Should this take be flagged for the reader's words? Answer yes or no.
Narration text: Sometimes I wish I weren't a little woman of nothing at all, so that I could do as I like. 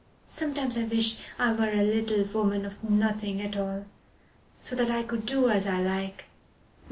yes